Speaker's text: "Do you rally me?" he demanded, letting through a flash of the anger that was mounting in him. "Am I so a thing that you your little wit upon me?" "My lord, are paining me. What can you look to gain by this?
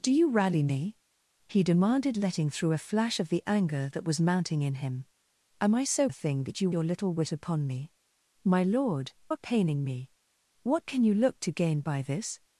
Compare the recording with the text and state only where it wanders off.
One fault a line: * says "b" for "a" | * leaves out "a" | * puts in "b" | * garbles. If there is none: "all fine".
all fine